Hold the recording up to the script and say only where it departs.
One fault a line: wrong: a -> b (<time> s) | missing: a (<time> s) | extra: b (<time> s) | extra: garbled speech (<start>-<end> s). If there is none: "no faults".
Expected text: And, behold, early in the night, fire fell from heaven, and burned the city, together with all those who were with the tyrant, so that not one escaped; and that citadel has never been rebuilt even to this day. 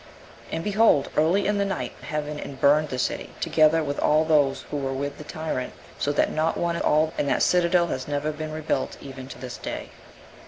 missing: fire fell from (1.9 s)
wrong: escaped -> all (6.8 s)